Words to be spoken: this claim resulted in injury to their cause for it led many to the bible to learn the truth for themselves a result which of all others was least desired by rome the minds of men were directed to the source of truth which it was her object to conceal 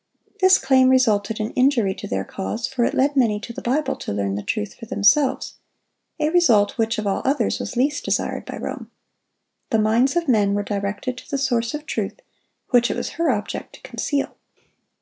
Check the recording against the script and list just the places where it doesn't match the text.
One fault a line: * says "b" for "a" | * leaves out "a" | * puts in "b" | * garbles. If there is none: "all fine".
all fine